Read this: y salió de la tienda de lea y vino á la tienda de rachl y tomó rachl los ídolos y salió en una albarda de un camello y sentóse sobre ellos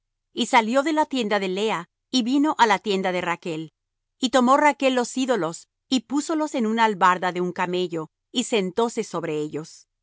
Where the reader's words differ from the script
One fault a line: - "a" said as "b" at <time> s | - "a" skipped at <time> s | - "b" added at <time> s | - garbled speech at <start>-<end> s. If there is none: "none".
- "salió" said as "púsolos" at 6.0 s